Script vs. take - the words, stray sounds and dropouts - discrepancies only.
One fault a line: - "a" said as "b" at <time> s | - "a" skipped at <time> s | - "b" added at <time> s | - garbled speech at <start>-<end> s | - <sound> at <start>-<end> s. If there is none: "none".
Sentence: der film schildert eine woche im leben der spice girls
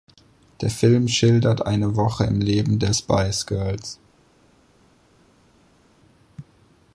none